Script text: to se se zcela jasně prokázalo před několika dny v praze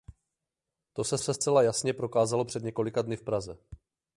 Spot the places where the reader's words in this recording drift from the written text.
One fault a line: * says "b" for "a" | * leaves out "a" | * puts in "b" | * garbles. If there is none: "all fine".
all fine